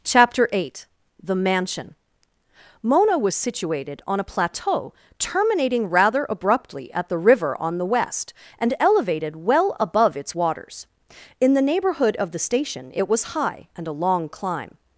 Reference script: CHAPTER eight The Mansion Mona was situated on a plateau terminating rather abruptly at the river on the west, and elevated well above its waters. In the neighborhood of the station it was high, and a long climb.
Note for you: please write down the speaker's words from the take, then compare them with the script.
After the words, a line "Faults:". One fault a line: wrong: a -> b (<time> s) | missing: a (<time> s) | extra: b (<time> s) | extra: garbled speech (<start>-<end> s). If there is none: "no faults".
CHAPTER eight The Mansion Mona was situated on a plateau terminating rather abruptly at the river on the west, and elevated well above its waters. In the neighborhood of the station it was high, and a long climb.
Faults:
no faults